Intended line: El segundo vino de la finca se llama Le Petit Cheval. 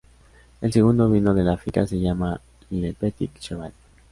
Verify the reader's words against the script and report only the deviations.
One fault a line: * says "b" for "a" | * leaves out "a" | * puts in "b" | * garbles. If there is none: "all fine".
all fine